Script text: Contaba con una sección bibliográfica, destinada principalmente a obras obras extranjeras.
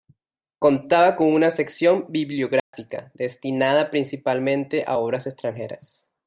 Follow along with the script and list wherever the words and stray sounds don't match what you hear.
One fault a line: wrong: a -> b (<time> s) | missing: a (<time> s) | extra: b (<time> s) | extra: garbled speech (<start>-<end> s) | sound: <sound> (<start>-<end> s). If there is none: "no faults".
sound: dropout (2.6-2.7 s)
missing: obras (5.2 s)